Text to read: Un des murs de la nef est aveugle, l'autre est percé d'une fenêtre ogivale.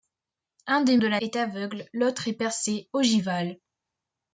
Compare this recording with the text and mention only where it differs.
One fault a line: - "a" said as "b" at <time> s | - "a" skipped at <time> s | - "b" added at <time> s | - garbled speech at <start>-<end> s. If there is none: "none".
- "murs" skipped at 1.0 s
- "nef" skipped at 1.2 s
- "d'une fenêtre" skipped at 2.9 s